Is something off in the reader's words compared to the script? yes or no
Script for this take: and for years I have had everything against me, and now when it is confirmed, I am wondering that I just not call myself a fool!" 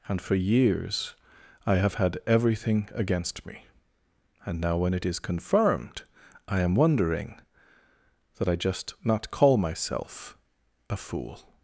no